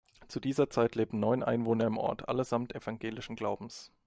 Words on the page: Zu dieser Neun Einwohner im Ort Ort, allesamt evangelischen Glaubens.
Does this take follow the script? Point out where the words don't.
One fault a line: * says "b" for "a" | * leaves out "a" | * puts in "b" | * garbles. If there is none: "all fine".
* puts in "Zeit lebten"
* leaves out "Ort"